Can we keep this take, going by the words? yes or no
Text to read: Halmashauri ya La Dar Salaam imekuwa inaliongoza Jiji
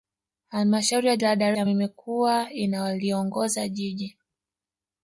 yes